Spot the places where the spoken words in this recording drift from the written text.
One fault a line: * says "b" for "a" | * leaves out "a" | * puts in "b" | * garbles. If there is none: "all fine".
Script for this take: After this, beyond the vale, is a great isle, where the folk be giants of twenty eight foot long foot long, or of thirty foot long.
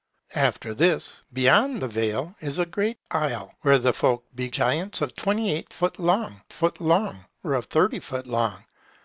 all fine